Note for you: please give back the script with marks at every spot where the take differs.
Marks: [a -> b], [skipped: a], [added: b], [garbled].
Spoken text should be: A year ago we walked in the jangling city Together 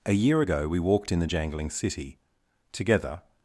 A year ago we walked in the jangling city Together